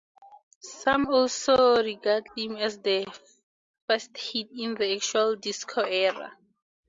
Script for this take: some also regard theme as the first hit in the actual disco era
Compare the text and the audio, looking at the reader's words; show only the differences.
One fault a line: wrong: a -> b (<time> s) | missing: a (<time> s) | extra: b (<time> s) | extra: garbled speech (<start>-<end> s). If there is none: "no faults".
no faults